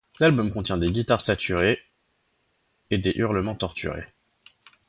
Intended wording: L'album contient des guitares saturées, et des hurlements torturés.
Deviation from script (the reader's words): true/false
false